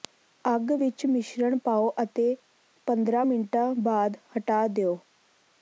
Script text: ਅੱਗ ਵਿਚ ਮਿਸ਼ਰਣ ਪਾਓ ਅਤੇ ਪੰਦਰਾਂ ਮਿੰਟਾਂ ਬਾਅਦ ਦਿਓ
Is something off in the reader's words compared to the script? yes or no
yes